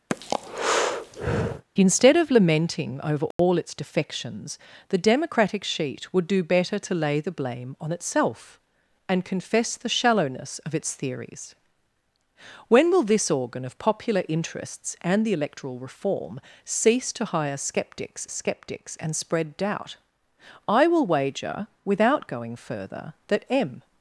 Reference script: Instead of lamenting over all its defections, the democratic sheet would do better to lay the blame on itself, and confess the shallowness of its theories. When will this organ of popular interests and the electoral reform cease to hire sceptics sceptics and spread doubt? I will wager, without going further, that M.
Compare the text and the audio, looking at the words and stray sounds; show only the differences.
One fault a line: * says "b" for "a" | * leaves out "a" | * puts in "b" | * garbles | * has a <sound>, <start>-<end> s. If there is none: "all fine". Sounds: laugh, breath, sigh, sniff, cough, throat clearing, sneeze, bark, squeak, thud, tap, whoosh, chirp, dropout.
* has a breath, 0.1-1.6 s
* has a dropout, 3.3-3.4 s